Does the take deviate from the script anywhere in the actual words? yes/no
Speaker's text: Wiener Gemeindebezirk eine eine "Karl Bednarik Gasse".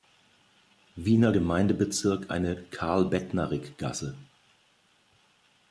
yes